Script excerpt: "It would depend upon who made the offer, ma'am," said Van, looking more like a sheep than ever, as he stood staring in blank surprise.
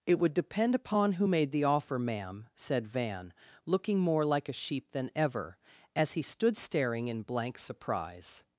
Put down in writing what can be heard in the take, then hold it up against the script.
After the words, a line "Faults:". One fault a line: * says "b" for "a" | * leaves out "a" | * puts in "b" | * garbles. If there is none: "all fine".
"It would depend upon who made the offer, ma'am," said Van, looking more like a sheep than ever, as he stood staring in blank surprise.
Faults:
all fine